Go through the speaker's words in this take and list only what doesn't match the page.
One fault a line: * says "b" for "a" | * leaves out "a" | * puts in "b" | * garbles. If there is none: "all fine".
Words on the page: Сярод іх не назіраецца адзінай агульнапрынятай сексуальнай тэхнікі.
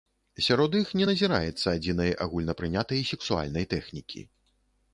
all fine